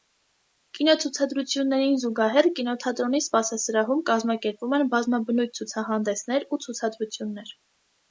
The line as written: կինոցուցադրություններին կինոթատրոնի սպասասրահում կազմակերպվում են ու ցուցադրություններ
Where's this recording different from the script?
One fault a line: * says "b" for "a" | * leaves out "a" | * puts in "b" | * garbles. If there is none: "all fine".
* puts in "զուգահեռ"
* puts in "բազմաբնույթ ցուցահանդեսներ"